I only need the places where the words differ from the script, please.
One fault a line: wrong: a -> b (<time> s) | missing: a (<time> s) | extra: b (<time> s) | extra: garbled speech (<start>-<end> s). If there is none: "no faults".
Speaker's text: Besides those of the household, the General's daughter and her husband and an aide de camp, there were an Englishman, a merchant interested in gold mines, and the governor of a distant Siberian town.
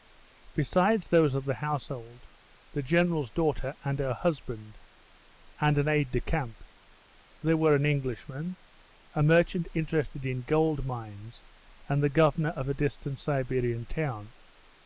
no faults